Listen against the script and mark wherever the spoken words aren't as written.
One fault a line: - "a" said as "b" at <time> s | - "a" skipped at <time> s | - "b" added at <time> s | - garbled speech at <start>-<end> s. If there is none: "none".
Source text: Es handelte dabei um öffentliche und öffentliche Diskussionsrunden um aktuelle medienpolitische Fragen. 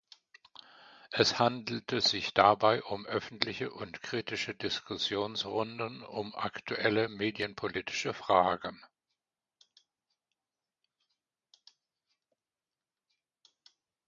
- "sich" added at 2.0 s
- "öffentliche" said as "kritische" at 4.0 s